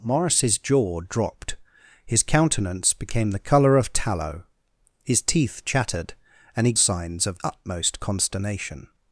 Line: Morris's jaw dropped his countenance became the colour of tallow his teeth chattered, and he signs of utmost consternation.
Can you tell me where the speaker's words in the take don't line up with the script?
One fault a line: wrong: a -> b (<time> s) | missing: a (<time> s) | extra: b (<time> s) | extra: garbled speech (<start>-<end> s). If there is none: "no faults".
no faults